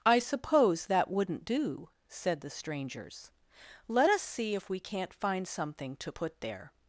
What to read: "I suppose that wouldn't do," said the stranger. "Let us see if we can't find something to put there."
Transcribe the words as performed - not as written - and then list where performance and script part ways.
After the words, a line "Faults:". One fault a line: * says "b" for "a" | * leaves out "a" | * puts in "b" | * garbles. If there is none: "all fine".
"I suppose that wouldn't do," said the strangers. "Let us see if we can't find something to put there."
Faults:
* says "strangers" for "stranger"